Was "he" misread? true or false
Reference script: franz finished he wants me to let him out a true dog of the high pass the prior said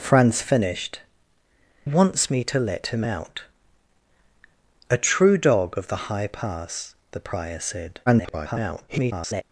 true